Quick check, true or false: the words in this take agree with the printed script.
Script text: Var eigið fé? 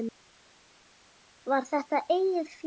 false